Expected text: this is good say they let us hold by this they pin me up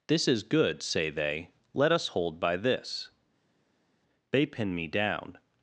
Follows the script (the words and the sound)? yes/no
no